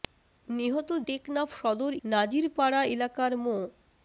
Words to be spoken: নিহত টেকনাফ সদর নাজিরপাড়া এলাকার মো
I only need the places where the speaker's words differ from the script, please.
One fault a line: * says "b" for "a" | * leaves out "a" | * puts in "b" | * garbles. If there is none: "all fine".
all fine